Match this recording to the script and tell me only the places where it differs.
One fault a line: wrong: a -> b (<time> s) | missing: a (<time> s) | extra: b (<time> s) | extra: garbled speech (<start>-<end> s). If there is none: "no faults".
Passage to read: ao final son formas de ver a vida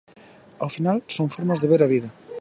no faults